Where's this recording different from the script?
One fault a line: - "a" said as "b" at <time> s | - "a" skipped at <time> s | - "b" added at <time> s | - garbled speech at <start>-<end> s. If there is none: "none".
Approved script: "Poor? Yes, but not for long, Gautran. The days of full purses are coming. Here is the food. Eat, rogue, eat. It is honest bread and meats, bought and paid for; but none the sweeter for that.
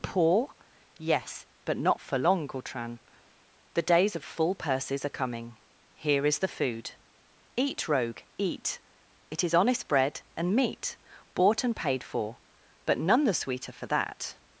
- "meats" said as "meat" at 10.6 s